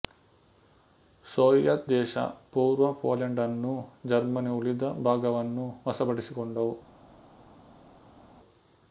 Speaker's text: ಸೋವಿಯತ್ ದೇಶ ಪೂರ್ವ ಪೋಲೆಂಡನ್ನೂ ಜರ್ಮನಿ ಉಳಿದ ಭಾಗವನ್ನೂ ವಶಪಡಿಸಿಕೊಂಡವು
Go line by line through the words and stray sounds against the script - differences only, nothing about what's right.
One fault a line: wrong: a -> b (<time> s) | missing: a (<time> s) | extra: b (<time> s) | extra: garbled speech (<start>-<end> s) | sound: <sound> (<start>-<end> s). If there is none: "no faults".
no faults